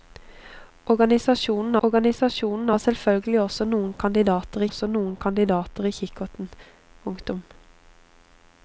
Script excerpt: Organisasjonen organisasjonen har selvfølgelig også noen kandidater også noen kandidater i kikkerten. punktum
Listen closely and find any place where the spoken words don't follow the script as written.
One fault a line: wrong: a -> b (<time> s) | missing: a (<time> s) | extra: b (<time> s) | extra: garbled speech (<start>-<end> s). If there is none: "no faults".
no faults